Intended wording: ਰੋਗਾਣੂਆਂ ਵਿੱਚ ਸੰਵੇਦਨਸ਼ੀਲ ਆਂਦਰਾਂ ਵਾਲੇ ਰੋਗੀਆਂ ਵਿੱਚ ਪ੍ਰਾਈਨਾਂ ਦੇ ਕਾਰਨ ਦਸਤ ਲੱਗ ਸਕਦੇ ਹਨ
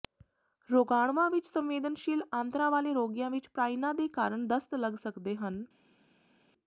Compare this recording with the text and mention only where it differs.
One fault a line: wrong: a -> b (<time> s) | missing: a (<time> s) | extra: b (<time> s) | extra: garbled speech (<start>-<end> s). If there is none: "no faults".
no faults